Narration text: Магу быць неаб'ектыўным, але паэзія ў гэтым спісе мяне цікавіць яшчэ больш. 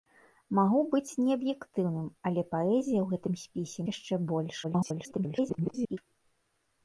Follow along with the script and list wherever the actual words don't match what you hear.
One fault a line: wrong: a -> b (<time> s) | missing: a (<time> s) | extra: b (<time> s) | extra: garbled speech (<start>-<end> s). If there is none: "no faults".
missing: мяне цікавіць (3.9 s)
extra: garbled speech (4.6-6.0 s)